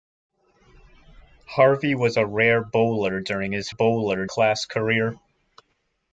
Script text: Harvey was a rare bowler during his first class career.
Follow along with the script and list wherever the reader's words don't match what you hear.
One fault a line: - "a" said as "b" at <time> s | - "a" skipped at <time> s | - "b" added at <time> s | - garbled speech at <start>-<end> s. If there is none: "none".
- "first" said as "bowler" at 3.7 s